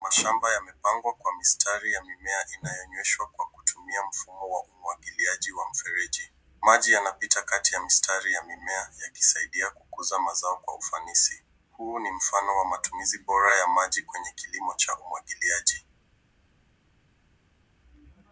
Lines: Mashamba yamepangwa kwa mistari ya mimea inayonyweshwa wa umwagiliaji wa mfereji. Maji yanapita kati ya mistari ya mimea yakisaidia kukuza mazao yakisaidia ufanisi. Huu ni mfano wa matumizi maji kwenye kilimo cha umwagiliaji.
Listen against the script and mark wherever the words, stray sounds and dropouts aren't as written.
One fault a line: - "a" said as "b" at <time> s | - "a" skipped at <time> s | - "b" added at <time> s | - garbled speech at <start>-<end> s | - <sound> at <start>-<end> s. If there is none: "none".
- "kwa kutumia mfumo" added at 3.3 s
- "yakisaidia" said as "kwa" at 10.6 s
- "bora ya" added at 13.2 s